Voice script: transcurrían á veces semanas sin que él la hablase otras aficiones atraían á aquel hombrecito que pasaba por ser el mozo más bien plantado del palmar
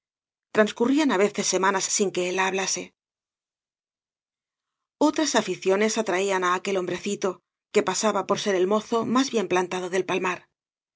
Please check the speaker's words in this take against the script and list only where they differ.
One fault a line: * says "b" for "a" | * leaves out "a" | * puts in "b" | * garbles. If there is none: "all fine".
all fine